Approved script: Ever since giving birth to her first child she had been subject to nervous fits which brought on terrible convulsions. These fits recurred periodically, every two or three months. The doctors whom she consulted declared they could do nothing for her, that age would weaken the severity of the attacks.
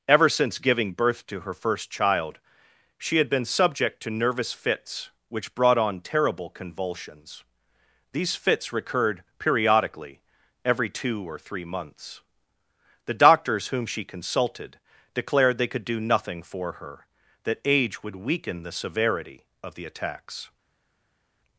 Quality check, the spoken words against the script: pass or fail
pass